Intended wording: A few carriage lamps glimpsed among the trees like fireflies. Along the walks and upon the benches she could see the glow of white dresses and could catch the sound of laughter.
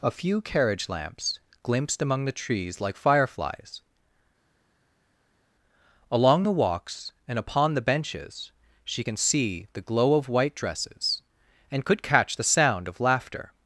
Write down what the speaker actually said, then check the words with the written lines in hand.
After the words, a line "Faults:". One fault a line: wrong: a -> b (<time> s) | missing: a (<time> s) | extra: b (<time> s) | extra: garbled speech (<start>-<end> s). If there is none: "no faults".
A few carriage lamps glimpsed among the trees like fireflies. Along the walks and upon the benches she can see the glow of white dresses and could catch the sound of laughter.
Faults:
wrong: could -> can (9.0 s)